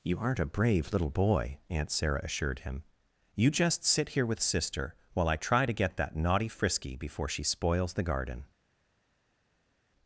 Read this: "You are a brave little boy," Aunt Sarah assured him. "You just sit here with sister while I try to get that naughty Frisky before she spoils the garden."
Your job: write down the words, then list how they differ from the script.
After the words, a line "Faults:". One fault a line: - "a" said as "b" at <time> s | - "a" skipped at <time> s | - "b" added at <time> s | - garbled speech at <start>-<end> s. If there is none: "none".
"You aren't a brave little boy," Aunt Sarah assured him. "You just sit here with sister while I try to get that naughty Frisky before she spoils the garden."
Faults:
- "are" said as "aren't" at 0.2 s